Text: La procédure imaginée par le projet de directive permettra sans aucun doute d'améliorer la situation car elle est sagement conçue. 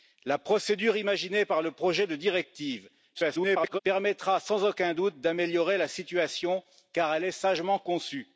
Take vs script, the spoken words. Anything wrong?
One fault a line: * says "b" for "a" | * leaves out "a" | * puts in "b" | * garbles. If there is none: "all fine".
* garbles